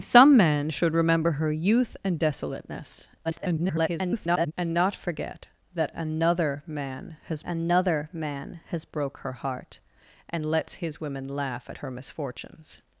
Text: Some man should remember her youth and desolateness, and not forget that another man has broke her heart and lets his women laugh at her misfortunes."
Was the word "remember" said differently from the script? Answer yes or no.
no